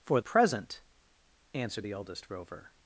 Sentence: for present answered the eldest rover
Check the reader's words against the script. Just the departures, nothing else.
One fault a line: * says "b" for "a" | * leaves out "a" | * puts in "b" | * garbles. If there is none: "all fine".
all fine